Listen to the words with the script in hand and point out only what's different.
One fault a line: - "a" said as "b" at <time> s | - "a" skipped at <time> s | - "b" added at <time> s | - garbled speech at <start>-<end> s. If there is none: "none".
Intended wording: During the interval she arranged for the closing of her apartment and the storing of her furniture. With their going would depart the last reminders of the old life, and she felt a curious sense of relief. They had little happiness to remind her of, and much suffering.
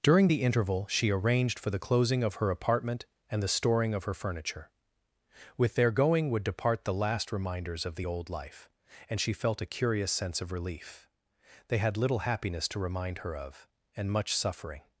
none